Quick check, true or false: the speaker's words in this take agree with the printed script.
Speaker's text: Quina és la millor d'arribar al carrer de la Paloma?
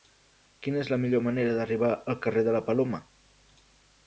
false